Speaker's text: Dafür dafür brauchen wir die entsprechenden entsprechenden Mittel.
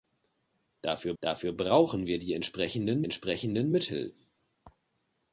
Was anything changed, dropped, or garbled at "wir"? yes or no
no